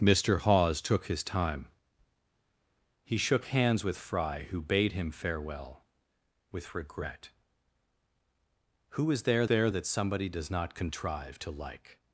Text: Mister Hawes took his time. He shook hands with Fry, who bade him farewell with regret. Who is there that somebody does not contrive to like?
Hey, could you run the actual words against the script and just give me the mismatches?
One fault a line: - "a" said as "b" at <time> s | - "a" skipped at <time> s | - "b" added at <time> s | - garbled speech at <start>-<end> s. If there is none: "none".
- "there" added at 9.5 s